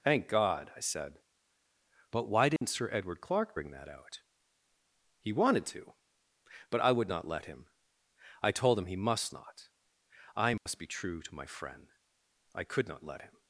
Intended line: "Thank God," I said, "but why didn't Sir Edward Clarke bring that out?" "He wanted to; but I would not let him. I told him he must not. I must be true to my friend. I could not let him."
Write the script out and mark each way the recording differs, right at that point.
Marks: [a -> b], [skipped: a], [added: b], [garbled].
"Thank God," I said, "but why didn't Sir Edward Clarke bring that out?" "He wanted to; but I would not let him. I told him he must not. I must be true to my friend. I could not let him."